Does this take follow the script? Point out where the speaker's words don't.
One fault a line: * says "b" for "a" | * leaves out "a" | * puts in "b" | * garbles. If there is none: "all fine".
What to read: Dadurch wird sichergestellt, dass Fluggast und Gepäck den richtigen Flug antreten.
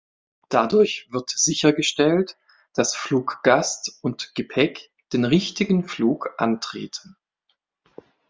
all fine